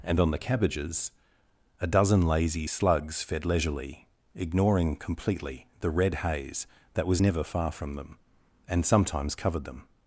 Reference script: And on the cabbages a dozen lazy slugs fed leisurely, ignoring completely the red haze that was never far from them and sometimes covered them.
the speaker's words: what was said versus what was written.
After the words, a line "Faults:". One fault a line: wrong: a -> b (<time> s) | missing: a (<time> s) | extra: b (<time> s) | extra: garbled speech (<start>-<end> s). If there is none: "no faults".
And on the cabbages a dozen lazy slugs fed leisurely, ignoring completely the red haze that was never far from them and sometimes covered them.
Faults:
no faults